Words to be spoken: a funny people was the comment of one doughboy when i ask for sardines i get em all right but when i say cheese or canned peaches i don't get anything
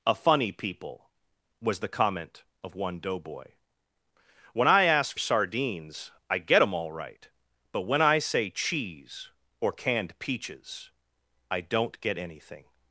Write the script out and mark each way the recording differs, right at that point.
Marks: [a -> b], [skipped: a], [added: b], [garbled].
a funny people was the comment of one doughboy when i ask [skipped: for] sardines i get em all right but when i say cheese or canned peaches i don't get anything